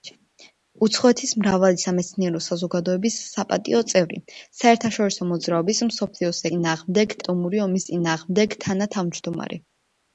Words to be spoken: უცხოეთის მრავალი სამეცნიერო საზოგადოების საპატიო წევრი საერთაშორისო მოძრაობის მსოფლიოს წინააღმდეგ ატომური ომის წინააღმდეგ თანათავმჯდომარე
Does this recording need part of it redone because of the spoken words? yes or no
no